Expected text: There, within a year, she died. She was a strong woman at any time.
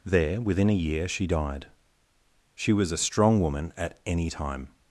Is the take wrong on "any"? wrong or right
right